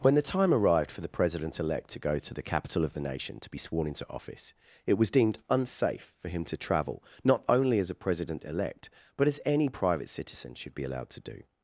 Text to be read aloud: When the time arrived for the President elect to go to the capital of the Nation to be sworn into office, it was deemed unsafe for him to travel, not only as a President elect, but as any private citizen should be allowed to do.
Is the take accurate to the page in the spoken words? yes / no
yes